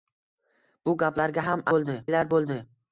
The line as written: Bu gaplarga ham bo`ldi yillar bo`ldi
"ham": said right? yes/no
yes